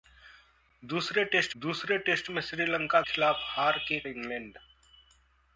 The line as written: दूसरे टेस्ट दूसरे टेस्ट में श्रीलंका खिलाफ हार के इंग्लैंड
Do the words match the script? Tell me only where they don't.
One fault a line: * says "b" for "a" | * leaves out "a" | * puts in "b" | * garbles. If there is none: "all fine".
all fine